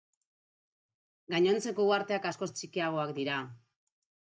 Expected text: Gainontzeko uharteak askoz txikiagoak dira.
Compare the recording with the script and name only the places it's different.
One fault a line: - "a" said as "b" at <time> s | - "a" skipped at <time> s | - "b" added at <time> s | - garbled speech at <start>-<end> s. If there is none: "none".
none